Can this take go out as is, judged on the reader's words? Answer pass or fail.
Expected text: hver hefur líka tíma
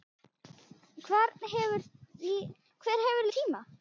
fail